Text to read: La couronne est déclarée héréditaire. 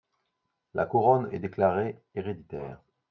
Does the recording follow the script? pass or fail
pass